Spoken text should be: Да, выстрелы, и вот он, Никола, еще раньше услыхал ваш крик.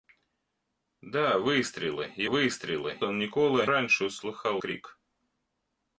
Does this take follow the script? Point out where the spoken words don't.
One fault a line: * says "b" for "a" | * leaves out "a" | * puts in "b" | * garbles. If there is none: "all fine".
* says "выстрелы" for "вот"
* leaves out "еще"
* leaves out "ваш"